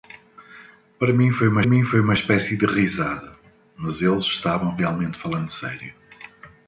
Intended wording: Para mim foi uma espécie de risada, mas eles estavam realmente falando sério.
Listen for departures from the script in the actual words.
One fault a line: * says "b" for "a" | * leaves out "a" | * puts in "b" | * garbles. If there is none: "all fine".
* puts in "mim foi uma"